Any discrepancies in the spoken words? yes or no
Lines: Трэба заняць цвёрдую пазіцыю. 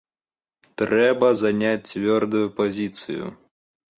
no